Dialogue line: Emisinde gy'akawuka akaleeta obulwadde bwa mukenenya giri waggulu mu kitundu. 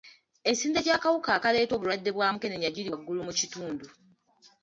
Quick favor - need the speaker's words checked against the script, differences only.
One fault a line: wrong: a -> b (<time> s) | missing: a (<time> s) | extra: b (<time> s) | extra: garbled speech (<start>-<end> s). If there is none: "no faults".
no faults